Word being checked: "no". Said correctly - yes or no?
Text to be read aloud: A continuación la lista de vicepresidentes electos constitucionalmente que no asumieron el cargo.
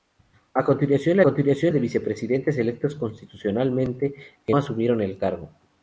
no